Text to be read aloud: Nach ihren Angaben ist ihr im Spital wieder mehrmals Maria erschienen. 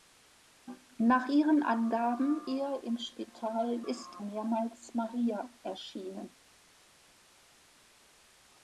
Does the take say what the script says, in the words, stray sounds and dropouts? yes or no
no